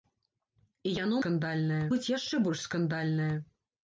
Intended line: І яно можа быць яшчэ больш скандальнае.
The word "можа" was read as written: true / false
false